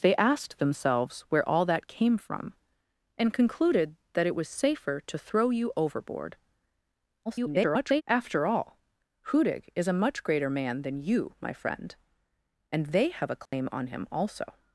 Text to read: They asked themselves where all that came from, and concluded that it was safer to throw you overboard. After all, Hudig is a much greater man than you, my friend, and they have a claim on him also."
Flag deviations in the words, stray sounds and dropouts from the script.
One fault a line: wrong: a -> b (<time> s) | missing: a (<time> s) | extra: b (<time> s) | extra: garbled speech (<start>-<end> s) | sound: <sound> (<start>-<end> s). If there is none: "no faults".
extra: garbled speech (7.3-8.0 s)
sound: dropout (13.5-13.5 s)